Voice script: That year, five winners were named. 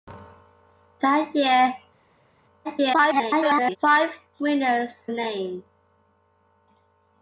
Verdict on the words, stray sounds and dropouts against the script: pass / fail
fail